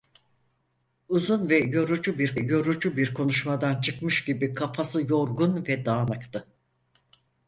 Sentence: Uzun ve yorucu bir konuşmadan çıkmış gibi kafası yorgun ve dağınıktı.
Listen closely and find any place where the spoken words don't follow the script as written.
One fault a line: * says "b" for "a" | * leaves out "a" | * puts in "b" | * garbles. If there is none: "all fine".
* puts in "yorucu bir"